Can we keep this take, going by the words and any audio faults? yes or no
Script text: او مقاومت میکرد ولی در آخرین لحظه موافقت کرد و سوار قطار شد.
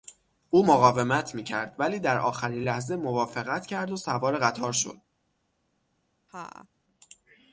no